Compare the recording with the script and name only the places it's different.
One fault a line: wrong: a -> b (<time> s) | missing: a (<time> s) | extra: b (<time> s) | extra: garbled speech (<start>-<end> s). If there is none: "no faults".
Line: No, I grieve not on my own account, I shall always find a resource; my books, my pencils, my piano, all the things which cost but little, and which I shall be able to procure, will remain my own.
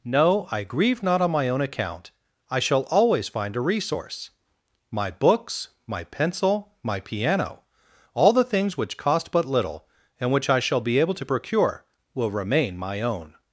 wrong: pencils -> pencil (6.0 s)